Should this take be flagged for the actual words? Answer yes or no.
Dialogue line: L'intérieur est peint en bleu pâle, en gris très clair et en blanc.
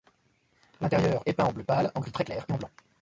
no